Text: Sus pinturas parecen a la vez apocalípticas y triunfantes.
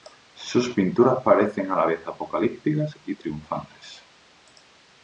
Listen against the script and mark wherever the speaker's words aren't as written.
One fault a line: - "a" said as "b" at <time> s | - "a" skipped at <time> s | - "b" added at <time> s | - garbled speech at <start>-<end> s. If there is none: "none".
none